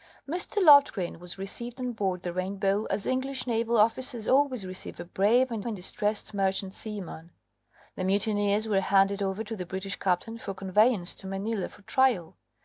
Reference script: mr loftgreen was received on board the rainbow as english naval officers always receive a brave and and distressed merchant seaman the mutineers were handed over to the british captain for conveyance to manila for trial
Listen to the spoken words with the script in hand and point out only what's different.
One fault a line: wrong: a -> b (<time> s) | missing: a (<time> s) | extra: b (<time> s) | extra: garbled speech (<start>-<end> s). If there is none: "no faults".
no faults